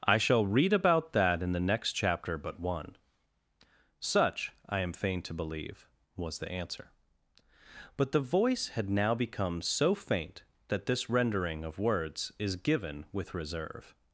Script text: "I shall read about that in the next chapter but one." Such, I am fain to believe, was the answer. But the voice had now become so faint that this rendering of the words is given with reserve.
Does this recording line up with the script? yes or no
no